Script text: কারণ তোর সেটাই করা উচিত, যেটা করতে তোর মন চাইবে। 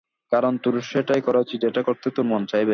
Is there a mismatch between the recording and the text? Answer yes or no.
no